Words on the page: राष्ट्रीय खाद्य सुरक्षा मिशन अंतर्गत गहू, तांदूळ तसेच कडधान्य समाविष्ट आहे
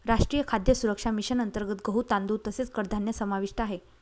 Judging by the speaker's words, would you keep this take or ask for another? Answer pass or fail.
pass